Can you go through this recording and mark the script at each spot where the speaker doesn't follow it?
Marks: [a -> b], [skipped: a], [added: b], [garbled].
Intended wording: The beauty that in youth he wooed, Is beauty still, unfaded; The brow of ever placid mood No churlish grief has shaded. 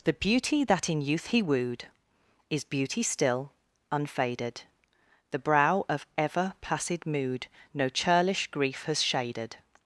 The beauty that in youth he wooed, Is beauty still, unfaded; The brow of ever placid mood No churlish grief has shaded.